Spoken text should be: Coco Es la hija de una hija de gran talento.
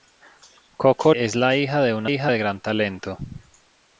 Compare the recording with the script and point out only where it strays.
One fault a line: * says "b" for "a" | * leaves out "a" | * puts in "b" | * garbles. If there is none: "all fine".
all fine